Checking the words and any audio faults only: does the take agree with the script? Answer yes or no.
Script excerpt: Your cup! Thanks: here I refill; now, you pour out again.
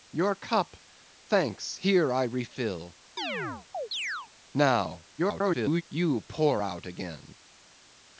no